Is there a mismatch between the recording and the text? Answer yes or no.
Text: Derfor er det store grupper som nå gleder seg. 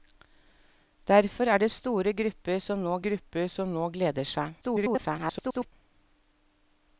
yes